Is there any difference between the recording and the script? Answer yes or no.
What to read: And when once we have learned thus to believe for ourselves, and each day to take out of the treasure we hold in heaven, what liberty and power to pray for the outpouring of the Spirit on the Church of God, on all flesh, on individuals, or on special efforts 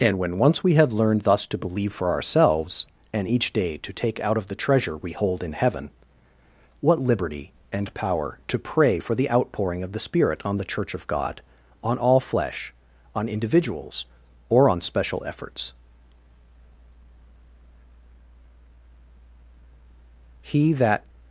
yes